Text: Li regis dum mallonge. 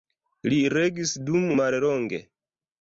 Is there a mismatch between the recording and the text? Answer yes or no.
no